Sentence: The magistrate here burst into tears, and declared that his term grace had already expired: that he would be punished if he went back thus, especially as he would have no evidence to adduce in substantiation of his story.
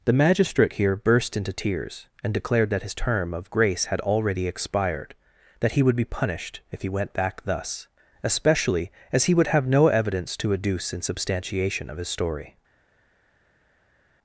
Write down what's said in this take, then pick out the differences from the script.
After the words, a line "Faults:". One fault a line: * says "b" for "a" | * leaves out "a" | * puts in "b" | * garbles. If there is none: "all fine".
The magistrate here burst into tears, and declared that his term of grace had already expired: that he would be punished if he went back thus, especially as he would have no evidence to adduce in substantiation of his story.
Faults:
* puts in "of"